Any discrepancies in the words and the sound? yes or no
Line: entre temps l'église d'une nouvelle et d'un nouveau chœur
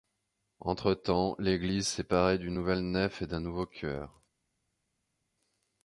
yes